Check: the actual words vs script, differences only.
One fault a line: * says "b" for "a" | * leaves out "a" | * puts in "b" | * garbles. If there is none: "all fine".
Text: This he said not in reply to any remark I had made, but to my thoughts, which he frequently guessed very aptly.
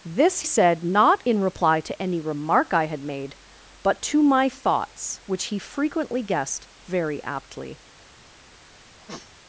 * leaves out "he"